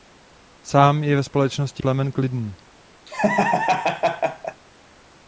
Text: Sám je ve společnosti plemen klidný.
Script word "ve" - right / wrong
right